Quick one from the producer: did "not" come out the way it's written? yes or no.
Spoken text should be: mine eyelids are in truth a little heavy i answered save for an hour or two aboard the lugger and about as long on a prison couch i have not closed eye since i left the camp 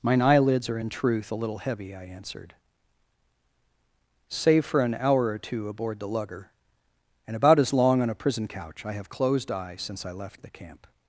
no